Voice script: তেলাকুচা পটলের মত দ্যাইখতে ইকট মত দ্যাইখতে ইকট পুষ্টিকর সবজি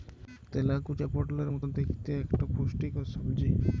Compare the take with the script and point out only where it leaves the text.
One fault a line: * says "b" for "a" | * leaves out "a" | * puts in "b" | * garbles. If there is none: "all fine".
* leaves out "মত দ্যাইখতে ইকট"